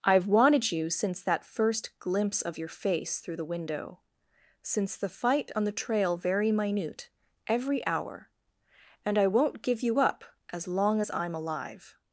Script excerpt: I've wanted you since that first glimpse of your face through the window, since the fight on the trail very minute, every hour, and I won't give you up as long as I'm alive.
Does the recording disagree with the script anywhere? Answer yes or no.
no